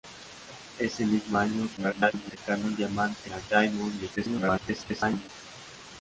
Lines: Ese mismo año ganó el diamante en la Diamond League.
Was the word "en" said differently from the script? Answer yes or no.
yes